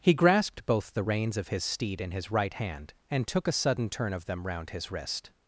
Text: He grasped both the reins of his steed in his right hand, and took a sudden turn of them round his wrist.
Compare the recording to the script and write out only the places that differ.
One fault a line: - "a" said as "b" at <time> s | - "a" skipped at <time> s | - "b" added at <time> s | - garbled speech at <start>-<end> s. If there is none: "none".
none